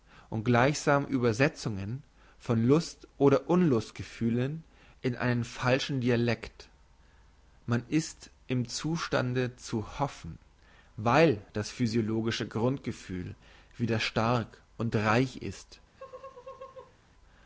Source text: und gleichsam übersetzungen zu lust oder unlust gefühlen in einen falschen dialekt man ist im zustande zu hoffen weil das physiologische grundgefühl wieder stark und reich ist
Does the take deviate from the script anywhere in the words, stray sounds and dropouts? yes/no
yes